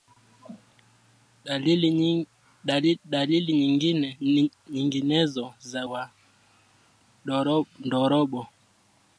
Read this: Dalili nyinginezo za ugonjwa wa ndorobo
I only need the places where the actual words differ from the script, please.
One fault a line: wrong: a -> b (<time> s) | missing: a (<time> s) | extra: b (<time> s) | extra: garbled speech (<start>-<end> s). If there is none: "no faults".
missing: ugonjwa (5.8 s)